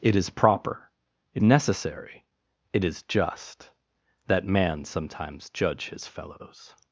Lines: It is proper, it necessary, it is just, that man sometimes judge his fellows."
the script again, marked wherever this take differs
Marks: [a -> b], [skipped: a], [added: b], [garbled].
It is proper, it necessary, it is just, that man sometimes judge his fellows."